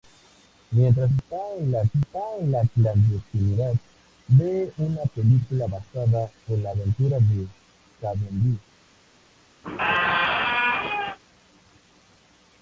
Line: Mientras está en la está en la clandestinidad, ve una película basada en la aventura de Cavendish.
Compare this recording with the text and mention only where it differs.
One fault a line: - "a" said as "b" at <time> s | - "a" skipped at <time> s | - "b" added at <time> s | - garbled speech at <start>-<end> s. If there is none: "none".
none